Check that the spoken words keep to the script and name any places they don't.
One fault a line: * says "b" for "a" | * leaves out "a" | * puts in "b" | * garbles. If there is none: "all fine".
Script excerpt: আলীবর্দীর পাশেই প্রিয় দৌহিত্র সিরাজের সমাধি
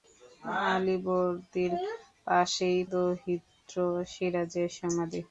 * leaves out "প্রিয়"